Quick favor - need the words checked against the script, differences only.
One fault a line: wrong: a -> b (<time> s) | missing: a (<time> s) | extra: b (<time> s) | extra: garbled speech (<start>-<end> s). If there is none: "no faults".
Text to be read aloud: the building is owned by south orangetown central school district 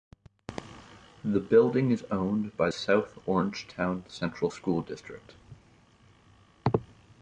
no faults